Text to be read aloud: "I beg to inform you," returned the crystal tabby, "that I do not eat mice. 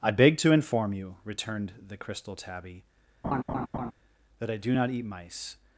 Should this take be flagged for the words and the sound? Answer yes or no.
yes